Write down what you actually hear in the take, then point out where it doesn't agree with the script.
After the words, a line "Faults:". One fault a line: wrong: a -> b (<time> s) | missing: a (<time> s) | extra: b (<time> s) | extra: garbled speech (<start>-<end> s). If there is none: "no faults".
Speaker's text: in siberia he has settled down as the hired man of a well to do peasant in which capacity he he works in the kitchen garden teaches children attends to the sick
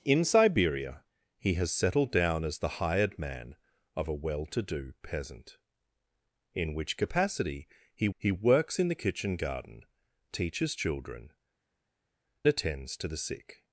in siberia he has settled down as the hired man of a well to do peasant in which capacity he he works in the kitchen garden teaches children attends to the sick
Faults:
no faults